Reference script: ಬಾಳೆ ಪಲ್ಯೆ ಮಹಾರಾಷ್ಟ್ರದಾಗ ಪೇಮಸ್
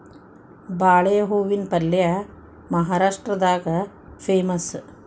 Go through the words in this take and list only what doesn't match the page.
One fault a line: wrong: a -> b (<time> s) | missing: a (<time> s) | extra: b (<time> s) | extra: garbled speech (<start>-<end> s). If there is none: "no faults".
extra: ಹೂವಿನ (1.2 s)